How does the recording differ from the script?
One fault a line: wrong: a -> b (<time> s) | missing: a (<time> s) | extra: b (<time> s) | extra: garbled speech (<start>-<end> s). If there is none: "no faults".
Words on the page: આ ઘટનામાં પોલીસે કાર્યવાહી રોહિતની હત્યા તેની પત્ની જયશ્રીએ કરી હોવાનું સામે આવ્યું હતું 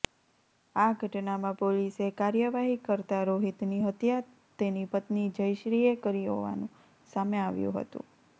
extra: કરતા (2.8 s)